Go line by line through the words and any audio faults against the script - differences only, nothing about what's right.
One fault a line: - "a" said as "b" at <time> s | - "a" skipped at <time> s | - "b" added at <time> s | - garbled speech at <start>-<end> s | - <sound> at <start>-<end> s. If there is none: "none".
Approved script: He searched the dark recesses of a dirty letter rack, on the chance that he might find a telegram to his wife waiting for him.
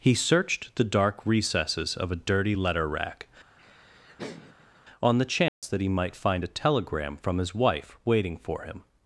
- laugh at 3.6-4.8 s
- dropout at 5.5-5.6 s
- "to" said as "from" at 7.2 s